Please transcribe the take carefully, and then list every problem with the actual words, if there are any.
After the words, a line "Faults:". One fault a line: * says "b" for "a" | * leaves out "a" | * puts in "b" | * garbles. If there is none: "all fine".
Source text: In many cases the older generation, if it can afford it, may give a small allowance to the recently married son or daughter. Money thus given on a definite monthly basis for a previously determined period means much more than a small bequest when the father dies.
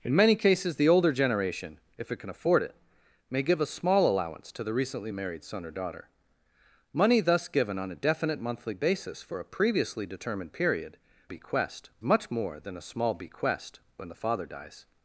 In many cases the older generation, if it can afford it, may give a small allowance to the recently married son or daughter. Money thus given on a definite monthly basis for a previously determined period bequest much more than a small bequest when the father dies.
Faults:
* says "bequest" for "means"